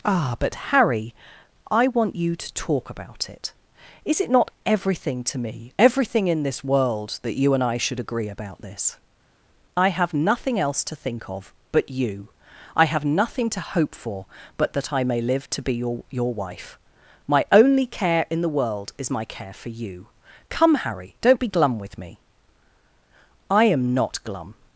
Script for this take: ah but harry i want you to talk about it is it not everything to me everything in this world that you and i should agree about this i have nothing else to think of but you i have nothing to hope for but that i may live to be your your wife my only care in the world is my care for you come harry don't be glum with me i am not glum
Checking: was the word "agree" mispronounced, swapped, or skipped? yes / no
no